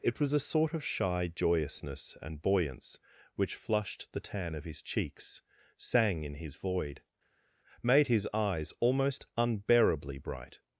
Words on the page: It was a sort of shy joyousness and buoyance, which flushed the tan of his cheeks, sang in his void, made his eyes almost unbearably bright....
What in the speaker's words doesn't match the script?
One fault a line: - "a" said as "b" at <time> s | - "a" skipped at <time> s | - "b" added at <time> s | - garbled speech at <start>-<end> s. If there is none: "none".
none